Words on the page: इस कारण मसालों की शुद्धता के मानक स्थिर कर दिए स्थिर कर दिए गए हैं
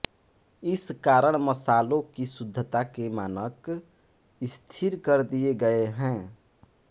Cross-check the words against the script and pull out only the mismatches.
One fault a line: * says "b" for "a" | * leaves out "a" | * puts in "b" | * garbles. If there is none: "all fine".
* leaves out "स्थिर कर दिए"